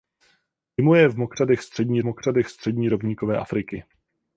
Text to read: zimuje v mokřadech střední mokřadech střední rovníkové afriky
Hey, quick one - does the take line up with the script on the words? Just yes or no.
yes